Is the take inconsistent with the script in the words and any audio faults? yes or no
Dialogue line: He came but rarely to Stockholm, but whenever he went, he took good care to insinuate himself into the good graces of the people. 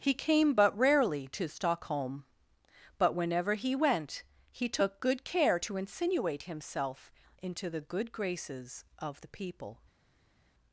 no